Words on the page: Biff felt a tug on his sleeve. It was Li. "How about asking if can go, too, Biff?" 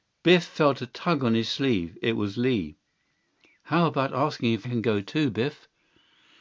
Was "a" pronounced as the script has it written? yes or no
yes